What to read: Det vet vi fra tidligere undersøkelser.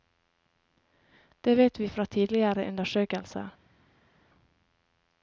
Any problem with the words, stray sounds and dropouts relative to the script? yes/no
no